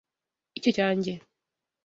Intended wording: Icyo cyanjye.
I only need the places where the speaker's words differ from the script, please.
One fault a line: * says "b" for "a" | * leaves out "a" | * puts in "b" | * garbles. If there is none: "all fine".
all fine